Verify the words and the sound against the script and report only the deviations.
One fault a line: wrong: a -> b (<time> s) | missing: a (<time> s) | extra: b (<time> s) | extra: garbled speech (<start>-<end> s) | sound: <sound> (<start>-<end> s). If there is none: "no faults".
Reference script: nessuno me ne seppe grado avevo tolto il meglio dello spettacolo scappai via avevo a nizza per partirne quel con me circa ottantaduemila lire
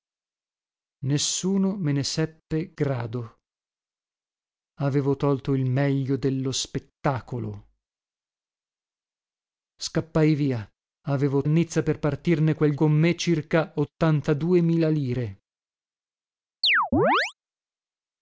sound: chirp (16.6-17.3 s)